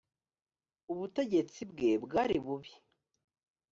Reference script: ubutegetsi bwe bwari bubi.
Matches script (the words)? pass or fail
pass